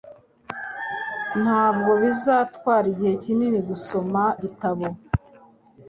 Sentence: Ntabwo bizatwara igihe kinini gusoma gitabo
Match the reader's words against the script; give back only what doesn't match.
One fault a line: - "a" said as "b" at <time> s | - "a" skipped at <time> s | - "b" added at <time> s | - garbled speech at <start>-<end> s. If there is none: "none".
none